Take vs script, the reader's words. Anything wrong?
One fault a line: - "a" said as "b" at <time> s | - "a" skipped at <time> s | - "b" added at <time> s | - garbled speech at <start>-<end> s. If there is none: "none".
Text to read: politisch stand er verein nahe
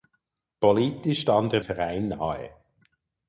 none